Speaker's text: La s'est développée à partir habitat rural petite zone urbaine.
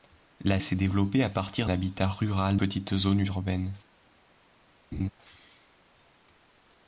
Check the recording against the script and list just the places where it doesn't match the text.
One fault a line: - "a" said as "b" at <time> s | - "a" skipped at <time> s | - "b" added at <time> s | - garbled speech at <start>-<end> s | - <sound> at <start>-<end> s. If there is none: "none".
- laugh at 4.9-5.1 s